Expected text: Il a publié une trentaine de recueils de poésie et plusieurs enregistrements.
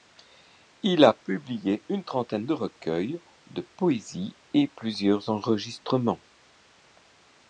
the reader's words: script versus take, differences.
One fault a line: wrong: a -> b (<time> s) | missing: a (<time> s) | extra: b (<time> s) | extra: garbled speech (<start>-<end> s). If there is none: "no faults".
no faults